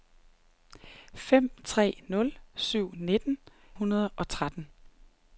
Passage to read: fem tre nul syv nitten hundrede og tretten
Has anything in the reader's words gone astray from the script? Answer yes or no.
no